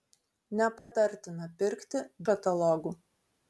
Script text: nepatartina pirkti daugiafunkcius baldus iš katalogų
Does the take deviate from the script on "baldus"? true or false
true